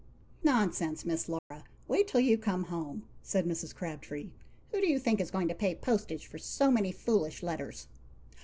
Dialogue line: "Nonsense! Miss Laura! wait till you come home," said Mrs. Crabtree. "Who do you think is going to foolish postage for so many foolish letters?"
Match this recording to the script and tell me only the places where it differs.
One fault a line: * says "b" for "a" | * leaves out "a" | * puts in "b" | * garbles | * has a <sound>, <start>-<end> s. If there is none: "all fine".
* has a dropout, 1.4-1.5 s
* says "pay" for "foolish"